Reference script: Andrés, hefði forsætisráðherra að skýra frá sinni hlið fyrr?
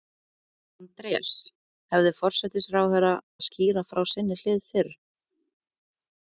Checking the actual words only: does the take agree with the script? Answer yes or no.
yes